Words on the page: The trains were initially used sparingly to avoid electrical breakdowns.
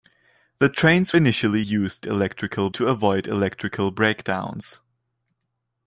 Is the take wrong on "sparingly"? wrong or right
wrong